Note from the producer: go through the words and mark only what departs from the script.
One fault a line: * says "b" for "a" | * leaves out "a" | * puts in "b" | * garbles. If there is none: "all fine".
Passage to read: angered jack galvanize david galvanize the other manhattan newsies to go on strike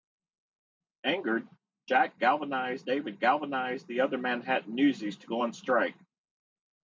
all fine